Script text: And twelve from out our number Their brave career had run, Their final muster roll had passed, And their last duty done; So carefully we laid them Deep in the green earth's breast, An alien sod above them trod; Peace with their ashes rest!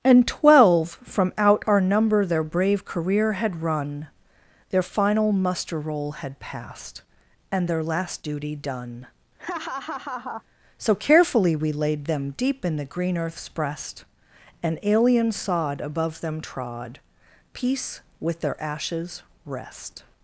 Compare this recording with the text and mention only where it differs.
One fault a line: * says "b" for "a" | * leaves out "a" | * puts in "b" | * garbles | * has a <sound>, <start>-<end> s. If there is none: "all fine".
* has a laugh, 9.4-10.4 s